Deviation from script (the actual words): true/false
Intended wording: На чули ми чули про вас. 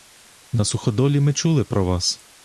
true